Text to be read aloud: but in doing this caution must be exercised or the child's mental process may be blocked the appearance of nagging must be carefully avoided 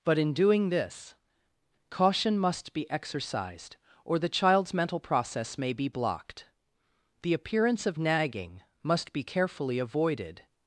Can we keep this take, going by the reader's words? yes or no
yes